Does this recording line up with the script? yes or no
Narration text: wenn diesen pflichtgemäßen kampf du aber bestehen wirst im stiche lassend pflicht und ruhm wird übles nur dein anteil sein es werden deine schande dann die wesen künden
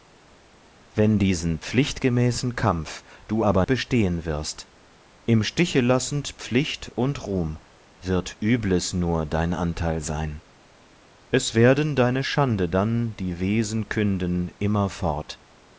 yes